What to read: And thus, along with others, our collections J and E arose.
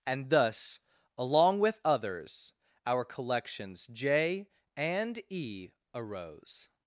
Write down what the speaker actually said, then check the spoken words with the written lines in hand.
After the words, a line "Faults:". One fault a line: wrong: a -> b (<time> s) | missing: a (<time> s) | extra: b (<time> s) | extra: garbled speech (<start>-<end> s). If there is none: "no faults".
And thus, along with others, our collections J and E arose.
Faults:
no faults